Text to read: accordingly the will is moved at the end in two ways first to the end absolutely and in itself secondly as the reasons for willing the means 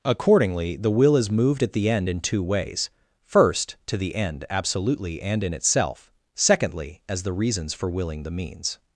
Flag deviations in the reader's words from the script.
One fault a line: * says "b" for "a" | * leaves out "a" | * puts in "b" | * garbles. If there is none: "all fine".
all fine